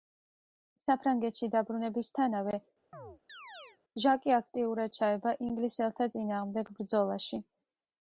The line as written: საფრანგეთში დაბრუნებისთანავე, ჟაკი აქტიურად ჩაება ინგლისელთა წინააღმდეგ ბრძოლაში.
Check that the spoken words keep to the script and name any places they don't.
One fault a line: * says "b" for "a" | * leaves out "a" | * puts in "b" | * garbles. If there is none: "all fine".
all fine